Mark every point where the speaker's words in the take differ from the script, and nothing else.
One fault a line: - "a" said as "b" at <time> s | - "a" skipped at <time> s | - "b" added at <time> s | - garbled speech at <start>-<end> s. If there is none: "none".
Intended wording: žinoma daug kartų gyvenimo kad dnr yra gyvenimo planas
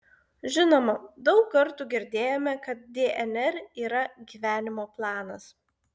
- "gyvenimo" said as "girdėjome" at 1.9 s